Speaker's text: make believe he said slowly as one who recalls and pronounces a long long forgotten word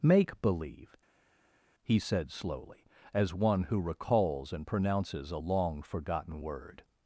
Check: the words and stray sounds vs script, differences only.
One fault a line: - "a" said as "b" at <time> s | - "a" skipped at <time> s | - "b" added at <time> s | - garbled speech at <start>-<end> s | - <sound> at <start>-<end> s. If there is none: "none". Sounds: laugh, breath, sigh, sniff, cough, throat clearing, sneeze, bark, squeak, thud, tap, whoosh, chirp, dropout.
- "long" skipped at 5.8 s